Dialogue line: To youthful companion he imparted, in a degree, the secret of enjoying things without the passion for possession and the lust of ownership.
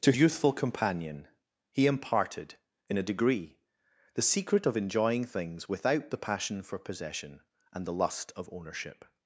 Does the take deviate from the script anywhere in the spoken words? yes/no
no